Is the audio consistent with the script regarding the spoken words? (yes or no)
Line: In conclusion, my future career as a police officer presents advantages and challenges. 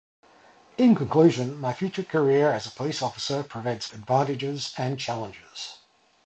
yes